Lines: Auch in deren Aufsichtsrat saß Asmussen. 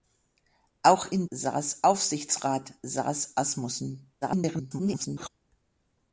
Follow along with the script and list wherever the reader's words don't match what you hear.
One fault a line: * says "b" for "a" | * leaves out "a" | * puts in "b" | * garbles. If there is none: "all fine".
* says "saß" for "deren"
* garbles